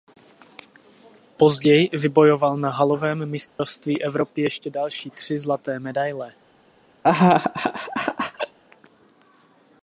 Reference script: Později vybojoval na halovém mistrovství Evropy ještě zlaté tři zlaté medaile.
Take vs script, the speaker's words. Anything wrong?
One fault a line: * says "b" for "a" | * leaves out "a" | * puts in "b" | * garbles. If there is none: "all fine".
* says "další" for "zlaté"